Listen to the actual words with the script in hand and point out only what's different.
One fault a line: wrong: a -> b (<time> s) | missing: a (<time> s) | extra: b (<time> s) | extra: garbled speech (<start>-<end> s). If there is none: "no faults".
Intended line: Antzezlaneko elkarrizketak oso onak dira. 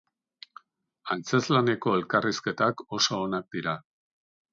no faults